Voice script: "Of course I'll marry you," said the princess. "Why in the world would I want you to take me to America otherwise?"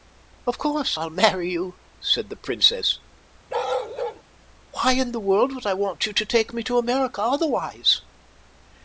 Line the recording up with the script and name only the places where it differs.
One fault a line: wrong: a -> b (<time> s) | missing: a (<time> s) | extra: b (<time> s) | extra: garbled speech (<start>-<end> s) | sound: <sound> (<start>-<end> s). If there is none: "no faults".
sound: bark (3.5-4.2 s)